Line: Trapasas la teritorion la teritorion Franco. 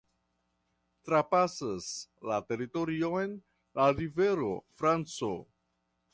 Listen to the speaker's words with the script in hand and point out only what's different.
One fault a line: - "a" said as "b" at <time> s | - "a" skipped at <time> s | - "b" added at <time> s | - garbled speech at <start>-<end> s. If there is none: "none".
- "teritorion" said as "rivero" at 4.0 s